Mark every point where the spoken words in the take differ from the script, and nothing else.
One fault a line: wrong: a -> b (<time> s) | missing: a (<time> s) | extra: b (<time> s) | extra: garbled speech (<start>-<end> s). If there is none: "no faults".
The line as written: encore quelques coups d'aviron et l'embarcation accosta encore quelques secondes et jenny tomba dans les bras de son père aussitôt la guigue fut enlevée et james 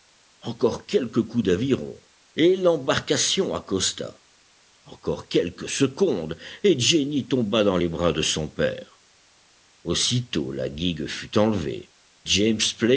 missing: et (11.9 s)